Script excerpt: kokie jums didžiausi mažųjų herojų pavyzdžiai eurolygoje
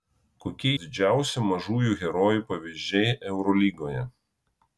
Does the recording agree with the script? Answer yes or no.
no